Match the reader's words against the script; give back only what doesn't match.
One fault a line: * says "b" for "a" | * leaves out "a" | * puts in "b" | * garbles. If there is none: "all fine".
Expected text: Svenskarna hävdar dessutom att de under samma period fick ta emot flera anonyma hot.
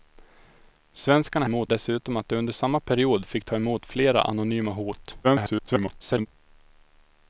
* says "emot" for "hävdar"
* garbles